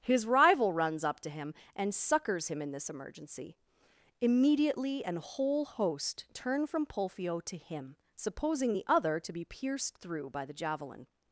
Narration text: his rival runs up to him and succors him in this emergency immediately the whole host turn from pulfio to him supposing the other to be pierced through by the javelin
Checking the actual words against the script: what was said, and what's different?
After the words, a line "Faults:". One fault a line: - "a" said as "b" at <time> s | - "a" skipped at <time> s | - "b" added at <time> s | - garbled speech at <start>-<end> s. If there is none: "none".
his rival runs up to him and succors him in this emergency immediately an whole host turn from pulfio to him supposing the other to be pierced through by the javelin
Faults:
- "the" said as "an" at 5.0 s